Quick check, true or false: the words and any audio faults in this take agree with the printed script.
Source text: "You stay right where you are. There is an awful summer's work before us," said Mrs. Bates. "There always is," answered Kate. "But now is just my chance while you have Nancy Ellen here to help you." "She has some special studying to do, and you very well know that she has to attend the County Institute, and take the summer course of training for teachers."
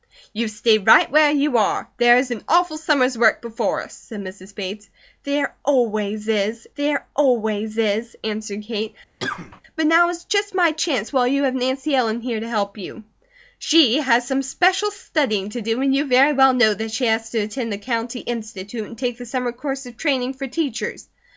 false